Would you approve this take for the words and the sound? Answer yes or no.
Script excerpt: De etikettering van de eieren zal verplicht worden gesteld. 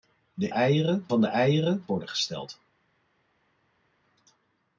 no